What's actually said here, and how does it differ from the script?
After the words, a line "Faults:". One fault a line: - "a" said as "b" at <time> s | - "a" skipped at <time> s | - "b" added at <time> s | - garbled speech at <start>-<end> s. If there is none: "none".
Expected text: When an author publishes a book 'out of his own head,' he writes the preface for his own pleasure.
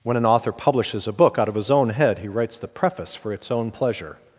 When an author publishes a book 'out of his own head,' he writes the preface for its own pleasure.
Faults:
- "his" said as "its" at 3.3 s